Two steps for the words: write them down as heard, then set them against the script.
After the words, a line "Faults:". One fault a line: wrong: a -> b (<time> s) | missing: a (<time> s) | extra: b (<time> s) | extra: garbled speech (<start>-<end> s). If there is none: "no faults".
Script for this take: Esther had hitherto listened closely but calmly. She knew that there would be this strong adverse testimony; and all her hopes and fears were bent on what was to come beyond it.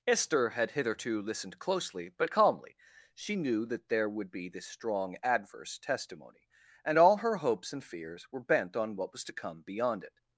Esther had hitherto listened closely but calmly. She knew that there would be this strong adverse testimony; and all her hopes and fears were bent on what was to come beyond it.
Faults:
no faults